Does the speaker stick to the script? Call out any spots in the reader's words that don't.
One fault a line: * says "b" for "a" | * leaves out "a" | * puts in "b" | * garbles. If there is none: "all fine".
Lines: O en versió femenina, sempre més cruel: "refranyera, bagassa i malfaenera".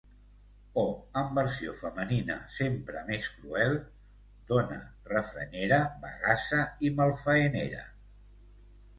* puts in "dona"